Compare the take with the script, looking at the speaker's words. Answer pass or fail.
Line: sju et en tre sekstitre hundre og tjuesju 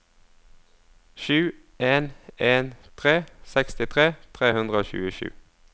fail